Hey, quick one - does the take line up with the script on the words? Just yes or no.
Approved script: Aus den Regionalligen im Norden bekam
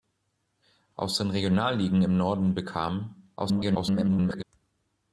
no